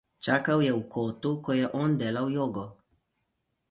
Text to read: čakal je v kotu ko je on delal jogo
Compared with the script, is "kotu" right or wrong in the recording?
right